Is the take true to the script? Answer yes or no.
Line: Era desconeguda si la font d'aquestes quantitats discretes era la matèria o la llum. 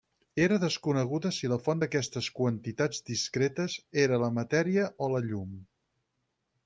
yes